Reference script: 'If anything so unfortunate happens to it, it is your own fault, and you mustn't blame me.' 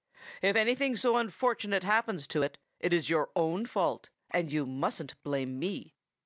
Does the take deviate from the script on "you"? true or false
false